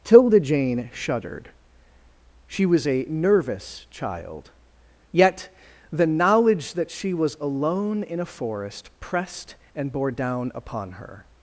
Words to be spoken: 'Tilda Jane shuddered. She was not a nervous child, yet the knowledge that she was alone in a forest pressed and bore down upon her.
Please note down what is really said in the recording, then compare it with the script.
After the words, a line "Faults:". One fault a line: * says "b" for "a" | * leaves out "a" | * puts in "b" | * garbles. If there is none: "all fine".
'Tilda Jane shuddered. She was a nervous child, yet the knowledge that she was alone in a forest pressed and bore down upon her.
Faults:
* leaves out "not"